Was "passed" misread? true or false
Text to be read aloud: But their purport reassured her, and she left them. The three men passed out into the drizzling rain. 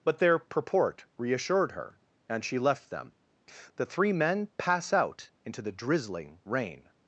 true